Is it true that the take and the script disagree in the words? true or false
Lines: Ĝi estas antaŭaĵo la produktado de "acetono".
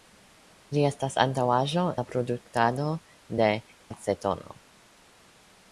false